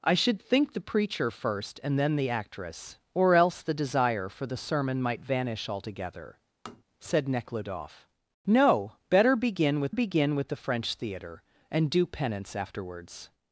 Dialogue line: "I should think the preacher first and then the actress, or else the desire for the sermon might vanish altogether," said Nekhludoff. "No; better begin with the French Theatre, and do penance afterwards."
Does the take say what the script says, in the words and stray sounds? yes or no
no